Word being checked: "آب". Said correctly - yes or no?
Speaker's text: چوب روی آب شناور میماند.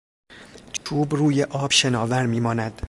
yes